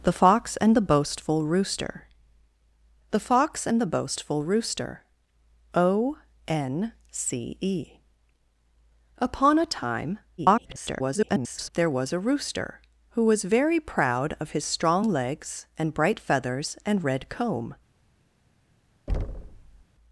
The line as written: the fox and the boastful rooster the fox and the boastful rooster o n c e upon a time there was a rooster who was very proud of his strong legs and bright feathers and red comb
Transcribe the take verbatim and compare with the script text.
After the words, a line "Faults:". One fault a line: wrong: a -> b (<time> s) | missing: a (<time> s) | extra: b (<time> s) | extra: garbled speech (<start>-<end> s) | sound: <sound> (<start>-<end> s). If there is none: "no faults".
the fox and the boastful rooster the fox and the boastful rooster o n c e upon a time [garbled] there was a rooster who was very proud of his strong legs and bright feathers and red comb
Faults:
extra: garbled speech (10.4-11.7 s)
sound: thud (19.1-19.8 s)